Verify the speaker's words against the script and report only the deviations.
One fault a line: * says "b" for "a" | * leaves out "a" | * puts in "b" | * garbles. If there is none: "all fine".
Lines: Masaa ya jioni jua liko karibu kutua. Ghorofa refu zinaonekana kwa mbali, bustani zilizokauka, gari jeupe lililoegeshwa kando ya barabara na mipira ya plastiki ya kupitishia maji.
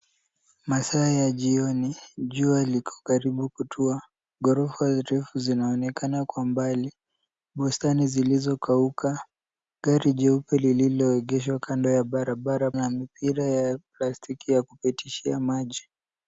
all fine